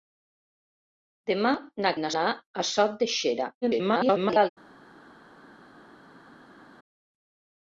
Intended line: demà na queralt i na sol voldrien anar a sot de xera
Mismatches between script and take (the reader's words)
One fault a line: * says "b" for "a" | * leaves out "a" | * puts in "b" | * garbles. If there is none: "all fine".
* leaves out "queralt"
* leaves out "sol voldrien"
* garbles